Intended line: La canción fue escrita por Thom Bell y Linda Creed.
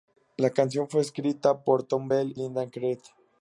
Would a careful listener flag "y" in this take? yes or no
yes